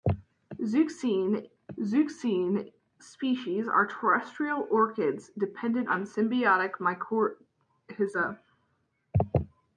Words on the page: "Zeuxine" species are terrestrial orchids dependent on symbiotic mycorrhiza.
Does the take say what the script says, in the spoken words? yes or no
no